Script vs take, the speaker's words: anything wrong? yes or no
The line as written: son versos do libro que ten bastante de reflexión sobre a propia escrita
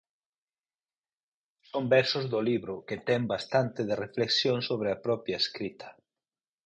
no